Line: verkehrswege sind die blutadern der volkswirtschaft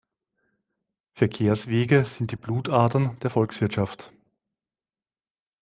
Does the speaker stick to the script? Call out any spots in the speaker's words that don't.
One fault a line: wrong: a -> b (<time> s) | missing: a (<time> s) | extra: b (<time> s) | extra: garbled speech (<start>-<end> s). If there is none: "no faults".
no faults